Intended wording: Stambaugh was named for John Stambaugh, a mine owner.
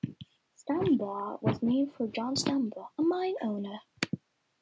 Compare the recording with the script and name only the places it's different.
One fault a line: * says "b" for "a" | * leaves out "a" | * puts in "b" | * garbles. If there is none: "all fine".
all fine